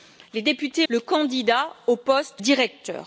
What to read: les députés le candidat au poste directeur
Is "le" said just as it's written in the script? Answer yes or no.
yes